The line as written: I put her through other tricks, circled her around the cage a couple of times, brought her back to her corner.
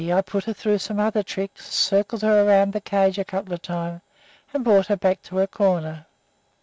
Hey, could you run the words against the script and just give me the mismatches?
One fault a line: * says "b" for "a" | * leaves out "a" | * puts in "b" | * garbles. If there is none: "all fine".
* puts in "some"
* puts in "and"